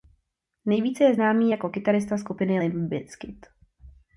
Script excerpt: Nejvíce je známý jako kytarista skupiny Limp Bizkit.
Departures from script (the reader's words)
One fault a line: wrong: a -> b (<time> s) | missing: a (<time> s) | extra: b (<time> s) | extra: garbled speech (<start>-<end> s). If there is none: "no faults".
no faults